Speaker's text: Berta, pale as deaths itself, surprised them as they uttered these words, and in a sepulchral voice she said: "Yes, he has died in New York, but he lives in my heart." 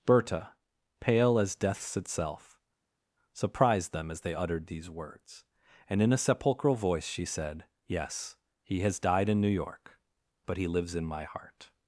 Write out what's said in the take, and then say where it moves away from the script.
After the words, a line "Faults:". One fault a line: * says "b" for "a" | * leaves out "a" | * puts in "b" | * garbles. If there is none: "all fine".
Berta, pale as deaths itself, surprised them as they uttered these words, and in a sepulchral voice she said: "Yes, he has died in New York, but he lives in my heart."
Faults:
all fine